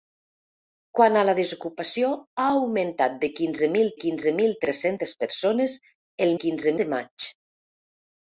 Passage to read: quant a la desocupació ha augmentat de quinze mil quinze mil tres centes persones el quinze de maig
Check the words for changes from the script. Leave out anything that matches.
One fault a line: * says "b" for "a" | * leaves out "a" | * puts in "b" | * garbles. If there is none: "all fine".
all fine